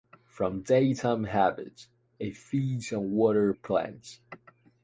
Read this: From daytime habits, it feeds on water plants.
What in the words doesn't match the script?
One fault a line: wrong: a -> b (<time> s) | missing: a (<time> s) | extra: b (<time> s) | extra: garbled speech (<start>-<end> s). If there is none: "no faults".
no faults